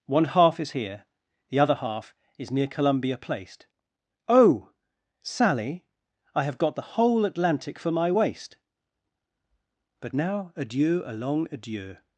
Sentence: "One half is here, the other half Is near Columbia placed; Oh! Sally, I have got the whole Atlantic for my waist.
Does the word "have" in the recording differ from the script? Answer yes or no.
no